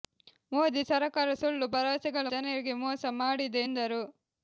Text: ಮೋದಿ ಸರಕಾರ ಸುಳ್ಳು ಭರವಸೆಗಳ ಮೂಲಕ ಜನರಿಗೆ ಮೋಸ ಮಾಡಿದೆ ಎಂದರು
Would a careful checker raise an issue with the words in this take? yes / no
yes